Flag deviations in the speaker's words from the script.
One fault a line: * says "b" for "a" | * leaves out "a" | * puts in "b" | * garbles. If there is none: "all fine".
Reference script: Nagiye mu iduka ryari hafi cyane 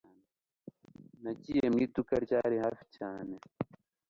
all fine